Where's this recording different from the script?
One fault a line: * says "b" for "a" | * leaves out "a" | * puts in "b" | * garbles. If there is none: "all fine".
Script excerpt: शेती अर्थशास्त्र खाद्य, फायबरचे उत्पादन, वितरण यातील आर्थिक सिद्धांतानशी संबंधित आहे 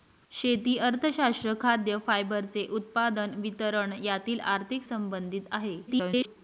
* leaves out "सिद्धांतानशी"
* garbles